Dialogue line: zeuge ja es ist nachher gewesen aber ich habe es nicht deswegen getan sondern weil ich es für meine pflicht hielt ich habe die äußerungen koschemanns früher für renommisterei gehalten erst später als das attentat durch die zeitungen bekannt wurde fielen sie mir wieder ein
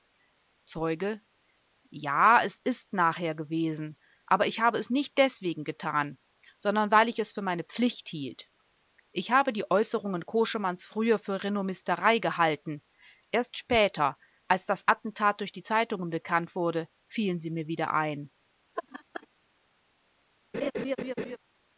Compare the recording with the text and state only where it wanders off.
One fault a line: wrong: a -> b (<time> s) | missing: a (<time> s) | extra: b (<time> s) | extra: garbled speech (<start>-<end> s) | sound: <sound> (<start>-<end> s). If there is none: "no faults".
sound: laugh (18.8-19.3 s)
sound: laugh (20.5-21.4 s)